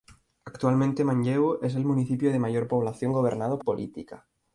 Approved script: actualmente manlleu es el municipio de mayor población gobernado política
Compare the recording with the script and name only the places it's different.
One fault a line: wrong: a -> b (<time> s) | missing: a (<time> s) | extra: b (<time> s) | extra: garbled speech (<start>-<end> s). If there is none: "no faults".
no faults